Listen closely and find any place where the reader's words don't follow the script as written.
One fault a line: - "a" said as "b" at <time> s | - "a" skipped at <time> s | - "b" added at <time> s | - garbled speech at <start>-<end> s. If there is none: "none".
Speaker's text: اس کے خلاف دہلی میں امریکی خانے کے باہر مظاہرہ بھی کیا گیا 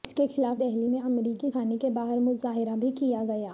none